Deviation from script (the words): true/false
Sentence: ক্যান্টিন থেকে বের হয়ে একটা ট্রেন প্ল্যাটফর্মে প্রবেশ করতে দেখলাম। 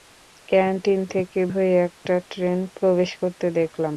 true